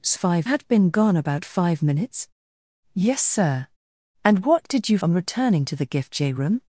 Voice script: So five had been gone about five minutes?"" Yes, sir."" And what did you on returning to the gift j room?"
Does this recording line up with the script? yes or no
yes